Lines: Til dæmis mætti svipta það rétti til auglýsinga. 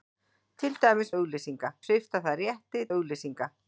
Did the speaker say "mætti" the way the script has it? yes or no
no